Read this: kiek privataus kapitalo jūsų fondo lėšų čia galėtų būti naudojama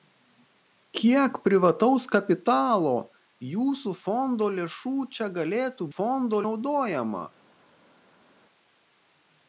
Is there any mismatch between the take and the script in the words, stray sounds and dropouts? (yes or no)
yes